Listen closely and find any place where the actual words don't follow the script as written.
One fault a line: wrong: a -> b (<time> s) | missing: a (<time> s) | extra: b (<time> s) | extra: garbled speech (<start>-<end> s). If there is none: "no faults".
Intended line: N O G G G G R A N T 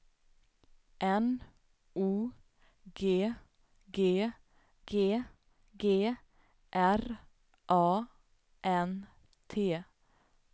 no faults